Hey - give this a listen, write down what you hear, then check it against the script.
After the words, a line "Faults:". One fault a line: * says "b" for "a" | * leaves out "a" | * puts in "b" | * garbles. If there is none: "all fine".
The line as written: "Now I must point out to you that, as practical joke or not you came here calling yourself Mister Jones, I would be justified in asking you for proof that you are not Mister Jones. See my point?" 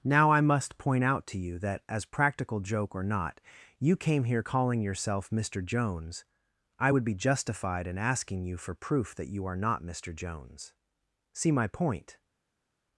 "Now I must point out to you that, as practical joke or not you came here calling yourself Mister Jones, I would be justified in asking you for proof that you are not Mister Jones. See my point?"
Faults:
all fine